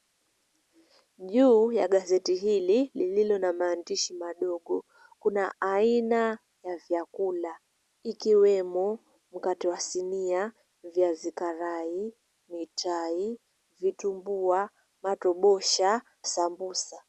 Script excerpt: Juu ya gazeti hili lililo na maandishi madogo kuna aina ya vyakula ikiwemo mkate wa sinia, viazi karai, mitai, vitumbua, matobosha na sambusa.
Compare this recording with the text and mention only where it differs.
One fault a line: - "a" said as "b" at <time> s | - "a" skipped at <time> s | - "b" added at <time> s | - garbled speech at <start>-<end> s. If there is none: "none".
- "na" skipped at 16.0 s